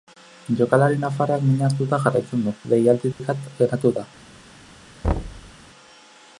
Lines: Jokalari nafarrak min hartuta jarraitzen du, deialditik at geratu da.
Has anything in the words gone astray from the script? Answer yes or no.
no